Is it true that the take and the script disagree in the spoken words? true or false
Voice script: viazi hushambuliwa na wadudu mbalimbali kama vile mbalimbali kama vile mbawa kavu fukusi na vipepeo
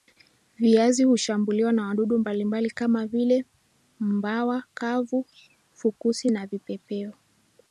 true